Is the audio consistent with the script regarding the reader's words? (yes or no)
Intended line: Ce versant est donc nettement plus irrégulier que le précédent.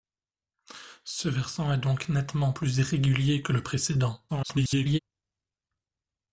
no